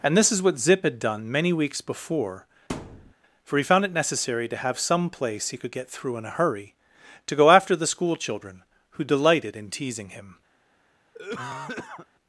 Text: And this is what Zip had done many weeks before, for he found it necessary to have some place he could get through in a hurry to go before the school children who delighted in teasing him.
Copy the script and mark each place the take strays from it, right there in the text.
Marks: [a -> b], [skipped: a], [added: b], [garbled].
And this is what Zip had done many weeks before, for he found it necessary to have some place he could get through in a hurry to go [before -> after] the school children who delighted in teasing him.